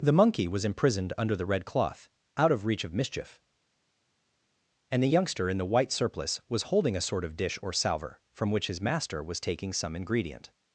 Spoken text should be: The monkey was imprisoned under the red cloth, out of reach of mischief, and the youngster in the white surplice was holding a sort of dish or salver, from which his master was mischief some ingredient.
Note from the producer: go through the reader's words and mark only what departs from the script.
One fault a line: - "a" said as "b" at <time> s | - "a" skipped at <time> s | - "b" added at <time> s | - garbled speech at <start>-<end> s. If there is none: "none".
- "mischief" said as "taking" at 9.4 s